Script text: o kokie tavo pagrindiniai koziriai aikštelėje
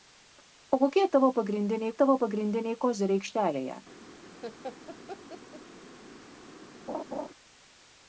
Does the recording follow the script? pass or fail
fail